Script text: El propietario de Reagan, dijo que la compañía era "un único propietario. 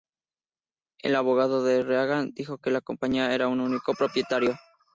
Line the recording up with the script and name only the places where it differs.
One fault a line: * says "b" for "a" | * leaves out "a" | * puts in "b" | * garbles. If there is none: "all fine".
* says "abogado" for "propietario"